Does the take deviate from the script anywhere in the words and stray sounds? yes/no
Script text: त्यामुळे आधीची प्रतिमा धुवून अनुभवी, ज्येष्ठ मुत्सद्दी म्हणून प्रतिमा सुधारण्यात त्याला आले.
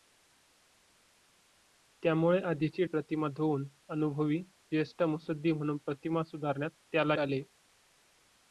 no